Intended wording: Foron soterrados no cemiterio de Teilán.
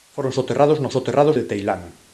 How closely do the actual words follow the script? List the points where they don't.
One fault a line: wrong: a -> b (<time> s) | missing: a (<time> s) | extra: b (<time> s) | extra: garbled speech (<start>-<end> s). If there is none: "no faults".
wrong: cemiterio -> soterrados (0.9 s)